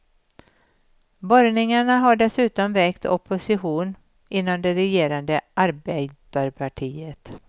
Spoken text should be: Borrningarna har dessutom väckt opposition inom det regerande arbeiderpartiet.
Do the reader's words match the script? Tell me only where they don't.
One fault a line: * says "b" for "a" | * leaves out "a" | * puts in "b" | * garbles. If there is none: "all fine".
all fine